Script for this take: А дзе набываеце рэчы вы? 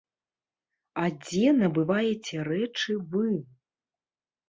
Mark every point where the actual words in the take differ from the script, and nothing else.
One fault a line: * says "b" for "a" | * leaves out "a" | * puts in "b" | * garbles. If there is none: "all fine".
all fine